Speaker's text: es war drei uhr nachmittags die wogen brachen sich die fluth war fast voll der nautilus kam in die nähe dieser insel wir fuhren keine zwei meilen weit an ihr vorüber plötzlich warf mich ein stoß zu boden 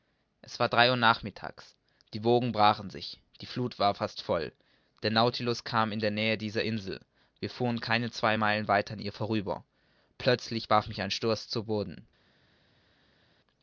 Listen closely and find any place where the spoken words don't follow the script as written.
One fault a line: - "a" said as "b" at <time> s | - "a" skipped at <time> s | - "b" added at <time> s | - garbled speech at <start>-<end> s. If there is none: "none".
none